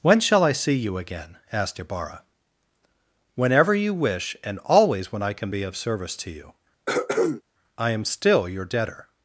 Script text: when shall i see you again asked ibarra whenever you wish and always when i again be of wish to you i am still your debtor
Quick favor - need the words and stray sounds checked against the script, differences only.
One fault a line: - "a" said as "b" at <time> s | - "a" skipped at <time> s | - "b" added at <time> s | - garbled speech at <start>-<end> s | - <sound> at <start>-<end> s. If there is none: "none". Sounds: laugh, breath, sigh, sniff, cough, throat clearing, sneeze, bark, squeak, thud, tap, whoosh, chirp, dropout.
- "again" said as "can" at 5.3 s
- "wish" said as "service" at 5.8 s
- throat clearing at 6.9-7.4 s